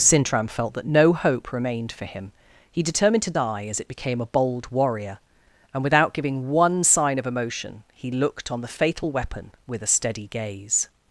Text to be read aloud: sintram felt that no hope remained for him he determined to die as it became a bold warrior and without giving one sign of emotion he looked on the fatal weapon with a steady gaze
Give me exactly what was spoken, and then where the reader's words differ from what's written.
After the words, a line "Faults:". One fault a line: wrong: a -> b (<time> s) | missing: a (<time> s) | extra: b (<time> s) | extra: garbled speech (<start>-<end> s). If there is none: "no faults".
sintram felt that no hope remained for him he determined to die as it became a bold warrior and without giving one sign of emotion he looked on the fatal weapon with a steady gaze
Faults:
no faults